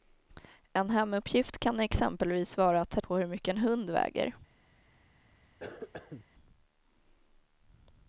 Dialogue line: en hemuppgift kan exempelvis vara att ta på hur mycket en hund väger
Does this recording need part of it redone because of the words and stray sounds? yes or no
yes